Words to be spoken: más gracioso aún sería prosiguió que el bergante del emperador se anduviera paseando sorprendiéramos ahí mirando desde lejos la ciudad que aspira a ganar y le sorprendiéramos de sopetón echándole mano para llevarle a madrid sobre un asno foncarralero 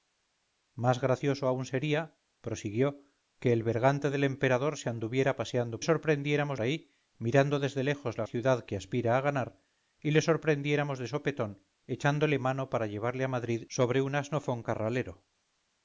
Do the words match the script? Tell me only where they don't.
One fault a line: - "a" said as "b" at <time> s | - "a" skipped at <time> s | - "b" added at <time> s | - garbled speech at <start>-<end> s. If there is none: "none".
none